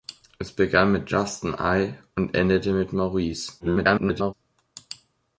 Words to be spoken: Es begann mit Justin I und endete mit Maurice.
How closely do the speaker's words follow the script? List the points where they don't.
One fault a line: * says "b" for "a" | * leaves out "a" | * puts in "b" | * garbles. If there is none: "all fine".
* garbles